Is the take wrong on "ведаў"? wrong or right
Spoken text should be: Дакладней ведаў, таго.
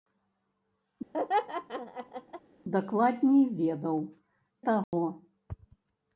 right